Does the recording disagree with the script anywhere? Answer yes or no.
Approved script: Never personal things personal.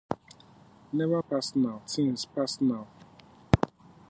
no